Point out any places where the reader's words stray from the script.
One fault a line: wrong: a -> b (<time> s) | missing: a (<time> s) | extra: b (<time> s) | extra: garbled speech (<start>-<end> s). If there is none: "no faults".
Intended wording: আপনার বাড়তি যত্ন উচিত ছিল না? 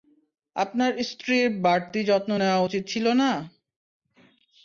extra: স্ত্রীর (1.1 s)
extra: নেওয়া (2.4 s)